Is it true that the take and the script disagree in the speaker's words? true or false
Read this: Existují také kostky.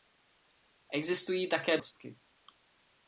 false